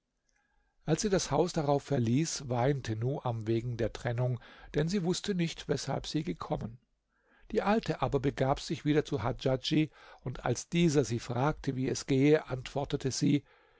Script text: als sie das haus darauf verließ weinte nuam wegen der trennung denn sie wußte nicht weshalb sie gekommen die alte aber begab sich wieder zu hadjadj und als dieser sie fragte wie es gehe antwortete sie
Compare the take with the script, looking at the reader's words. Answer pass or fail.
pass